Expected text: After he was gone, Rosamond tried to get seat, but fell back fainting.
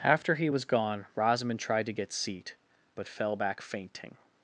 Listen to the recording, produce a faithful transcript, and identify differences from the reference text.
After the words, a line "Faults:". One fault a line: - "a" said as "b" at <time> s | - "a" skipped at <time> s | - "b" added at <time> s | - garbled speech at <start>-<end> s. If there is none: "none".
After he was gone, Rosamond tried to get seat, but fell back fainting.
Faults:
none